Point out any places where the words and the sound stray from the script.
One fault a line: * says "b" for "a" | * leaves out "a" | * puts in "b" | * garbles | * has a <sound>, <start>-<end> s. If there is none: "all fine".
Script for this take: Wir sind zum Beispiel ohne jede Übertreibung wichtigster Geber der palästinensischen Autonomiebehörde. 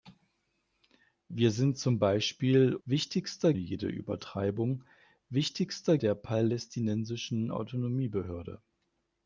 * says "wichtigster" for "ohne"
* leaves out "Geber"